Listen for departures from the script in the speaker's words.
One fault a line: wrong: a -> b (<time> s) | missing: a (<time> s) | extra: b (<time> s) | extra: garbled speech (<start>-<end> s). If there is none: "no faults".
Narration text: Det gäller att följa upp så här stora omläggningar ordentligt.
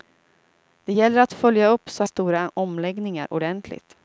missing: här (2.0 s)